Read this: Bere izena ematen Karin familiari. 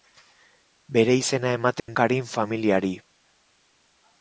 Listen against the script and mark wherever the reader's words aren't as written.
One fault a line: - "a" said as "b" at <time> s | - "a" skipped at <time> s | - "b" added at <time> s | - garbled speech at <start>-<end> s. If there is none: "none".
none